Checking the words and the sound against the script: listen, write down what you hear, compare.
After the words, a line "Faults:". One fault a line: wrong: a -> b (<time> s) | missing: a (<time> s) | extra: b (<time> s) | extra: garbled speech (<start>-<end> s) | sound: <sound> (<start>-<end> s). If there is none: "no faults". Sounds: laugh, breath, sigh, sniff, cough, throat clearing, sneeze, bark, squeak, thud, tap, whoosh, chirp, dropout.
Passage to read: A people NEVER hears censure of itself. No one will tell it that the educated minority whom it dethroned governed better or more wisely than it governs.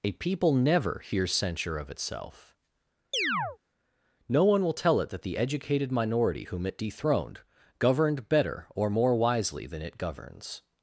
A people NEVER hears censure of itself. No one will tell it that the educated minority whom it dethroned governed better or more wisely than it governs.
Faults:
sound: chirp (3.1-3.6 s)